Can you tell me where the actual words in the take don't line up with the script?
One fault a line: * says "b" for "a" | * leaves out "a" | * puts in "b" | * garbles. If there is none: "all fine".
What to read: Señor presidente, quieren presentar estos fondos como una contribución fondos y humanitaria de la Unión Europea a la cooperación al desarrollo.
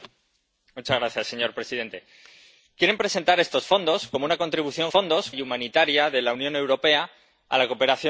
all fine